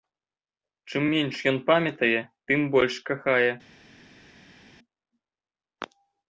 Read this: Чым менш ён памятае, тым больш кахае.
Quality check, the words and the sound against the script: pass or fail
pass